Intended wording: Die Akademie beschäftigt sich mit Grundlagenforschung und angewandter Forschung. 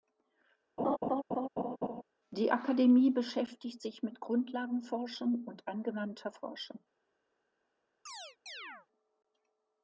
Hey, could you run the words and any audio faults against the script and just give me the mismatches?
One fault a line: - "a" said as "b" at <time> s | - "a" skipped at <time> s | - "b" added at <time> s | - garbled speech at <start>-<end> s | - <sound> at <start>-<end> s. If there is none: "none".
- laugh at 0.8-2.0 s
- chirp at 8.1-8.9 s